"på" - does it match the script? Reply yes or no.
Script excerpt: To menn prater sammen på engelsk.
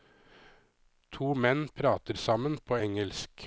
yes